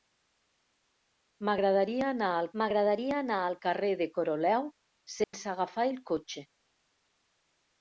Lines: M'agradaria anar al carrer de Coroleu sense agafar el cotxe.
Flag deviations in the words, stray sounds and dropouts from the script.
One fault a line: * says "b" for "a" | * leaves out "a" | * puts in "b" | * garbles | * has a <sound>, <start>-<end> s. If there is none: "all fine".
* puts in "m'agradaria anar al"
* has a dropout, 5.2-5.3 s